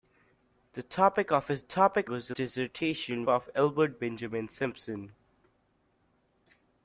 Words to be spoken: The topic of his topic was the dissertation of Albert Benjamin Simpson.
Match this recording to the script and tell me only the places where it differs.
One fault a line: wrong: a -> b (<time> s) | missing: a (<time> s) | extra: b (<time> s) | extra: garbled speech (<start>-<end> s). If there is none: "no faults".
no faults